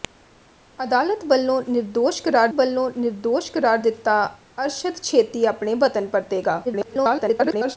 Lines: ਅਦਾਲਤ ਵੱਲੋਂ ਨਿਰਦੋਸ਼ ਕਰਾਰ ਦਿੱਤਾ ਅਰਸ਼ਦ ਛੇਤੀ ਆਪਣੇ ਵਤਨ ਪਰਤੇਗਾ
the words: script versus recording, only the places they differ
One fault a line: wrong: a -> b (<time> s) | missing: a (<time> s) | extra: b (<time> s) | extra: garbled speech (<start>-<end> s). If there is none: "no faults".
extra: ਵੱਲੋਂ ਨਿਰਦੋਸ਼ ਕਰਾਰ (2.5 s)
extra: garbled speech (6.6-7.8 s)